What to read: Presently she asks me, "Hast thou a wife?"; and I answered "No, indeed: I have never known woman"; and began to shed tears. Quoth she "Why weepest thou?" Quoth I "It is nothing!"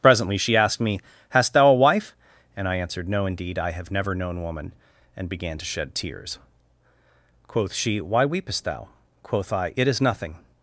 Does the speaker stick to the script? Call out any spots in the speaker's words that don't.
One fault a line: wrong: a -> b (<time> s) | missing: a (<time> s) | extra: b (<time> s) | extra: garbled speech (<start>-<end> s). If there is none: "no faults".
wrong: asks -> asked (0.6 s)